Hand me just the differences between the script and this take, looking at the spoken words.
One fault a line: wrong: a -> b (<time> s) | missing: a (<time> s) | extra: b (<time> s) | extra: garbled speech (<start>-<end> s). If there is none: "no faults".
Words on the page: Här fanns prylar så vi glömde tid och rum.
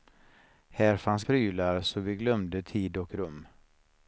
no faults